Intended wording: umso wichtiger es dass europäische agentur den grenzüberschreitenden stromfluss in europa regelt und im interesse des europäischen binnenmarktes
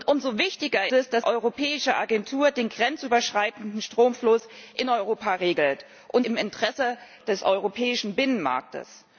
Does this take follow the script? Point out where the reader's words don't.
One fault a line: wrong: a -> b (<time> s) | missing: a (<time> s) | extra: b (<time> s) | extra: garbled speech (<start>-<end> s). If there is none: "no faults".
no faults